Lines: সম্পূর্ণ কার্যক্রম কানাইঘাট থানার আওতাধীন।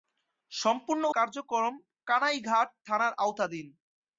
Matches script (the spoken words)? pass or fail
pass